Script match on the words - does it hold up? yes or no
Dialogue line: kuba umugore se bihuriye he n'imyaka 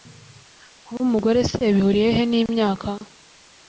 yes